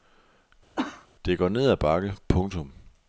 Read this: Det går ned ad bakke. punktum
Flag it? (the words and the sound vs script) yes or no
yes